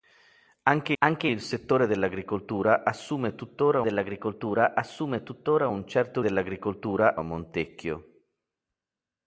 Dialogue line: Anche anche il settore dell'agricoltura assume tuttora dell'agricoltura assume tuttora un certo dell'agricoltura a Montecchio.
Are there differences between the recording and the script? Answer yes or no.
no